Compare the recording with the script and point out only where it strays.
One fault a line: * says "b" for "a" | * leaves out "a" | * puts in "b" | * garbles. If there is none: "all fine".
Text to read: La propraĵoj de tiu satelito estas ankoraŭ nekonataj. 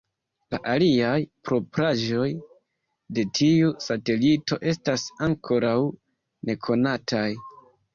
* puts in "aliaj"